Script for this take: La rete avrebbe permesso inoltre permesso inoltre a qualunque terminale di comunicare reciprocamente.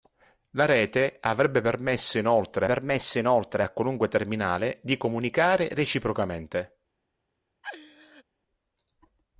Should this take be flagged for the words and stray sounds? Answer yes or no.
yes